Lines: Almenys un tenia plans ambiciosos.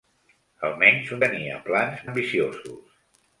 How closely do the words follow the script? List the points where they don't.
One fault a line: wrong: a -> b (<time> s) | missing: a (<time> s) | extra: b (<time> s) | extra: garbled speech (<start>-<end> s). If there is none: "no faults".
no faults